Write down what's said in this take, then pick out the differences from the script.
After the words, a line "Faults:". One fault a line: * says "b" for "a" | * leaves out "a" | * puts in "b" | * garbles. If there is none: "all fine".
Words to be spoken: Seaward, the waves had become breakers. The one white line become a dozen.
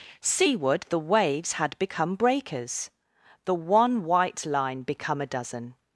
Seaward, the waves had become breakers. The one white line become a dozen.
Faults:
all fine